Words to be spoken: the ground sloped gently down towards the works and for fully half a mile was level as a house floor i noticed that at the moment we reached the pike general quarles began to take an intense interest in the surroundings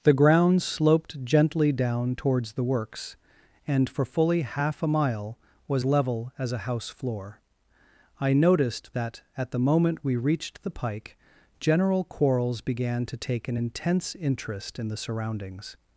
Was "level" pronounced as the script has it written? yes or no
yes